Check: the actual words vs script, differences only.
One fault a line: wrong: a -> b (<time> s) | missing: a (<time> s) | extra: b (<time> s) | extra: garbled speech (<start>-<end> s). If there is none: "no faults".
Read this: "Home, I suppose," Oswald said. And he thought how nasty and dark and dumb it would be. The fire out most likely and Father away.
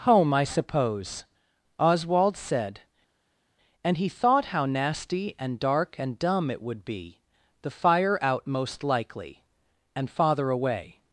no faults